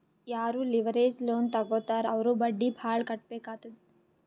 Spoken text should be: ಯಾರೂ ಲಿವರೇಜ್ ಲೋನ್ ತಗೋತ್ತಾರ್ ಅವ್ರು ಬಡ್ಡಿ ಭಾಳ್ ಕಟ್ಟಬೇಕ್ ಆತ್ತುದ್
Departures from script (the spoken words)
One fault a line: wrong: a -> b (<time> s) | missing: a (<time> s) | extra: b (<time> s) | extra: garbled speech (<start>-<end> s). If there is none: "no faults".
no faults